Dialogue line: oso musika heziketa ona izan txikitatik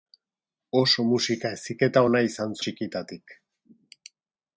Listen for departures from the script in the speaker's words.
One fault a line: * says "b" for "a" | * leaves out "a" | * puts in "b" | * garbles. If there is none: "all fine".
all fine